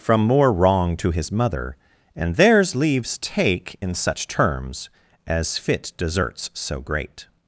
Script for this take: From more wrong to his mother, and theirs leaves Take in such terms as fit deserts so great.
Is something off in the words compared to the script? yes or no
no